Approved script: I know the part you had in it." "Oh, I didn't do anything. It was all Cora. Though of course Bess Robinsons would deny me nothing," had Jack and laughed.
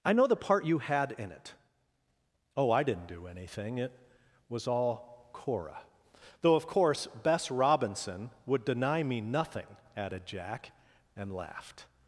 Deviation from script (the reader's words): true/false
true